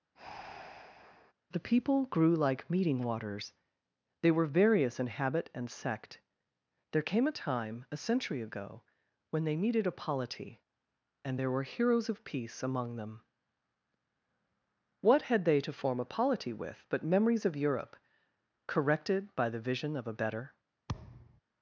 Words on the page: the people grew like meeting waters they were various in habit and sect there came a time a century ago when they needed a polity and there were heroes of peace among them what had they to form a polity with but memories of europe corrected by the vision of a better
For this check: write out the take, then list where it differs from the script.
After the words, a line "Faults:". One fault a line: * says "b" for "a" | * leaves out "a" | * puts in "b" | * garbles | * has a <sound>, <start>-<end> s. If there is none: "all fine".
the people grew like meeting waters they were various in habit and sect there came a time a century ago when they needed a polity and there were heroes of peace among them what had they to form a polity with but memories of europe corrected by the vision of a better
Faults:
* has a breath, 0.1-1.3 s
* has a thud, 20.9-21.4 s